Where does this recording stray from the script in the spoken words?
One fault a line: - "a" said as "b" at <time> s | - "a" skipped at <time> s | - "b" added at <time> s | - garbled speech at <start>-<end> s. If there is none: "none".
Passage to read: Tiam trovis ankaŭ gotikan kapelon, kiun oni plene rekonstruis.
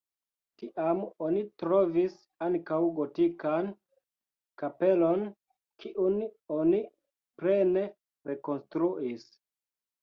- "oni" added at 1.3 s